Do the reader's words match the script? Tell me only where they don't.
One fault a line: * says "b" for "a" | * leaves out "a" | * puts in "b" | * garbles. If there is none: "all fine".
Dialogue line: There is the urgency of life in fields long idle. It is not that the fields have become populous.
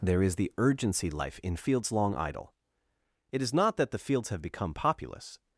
* leaves out "of"